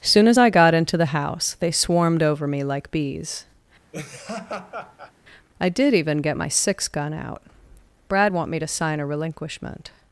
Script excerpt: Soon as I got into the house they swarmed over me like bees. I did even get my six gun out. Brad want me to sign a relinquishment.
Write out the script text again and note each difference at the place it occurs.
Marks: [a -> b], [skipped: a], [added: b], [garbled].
Soon as I got into the house they swarmed over me like bees. I did even get my six gun out. Brad want me to sign a relinquishment.